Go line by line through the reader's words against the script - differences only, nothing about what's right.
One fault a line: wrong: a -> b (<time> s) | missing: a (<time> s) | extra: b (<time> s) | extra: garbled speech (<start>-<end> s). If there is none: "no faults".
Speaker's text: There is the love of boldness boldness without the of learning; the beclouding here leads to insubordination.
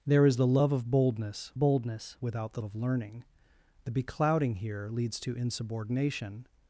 no faults